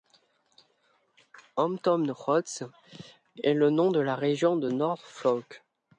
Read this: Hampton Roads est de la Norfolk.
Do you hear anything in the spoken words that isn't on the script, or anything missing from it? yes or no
yes